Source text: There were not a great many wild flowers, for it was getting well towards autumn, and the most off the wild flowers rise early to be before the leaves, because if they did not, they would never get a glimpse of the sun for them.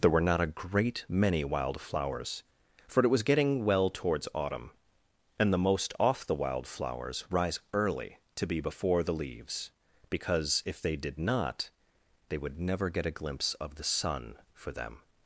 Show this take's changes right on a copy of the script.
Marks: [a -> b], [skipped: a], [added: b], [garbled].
There were not a great many wild flowers, for it was getting well towards autumn, and the most off the wild flowers rise early to be before the leaves, because if they did not, they would never get a glimpse of the sun for them.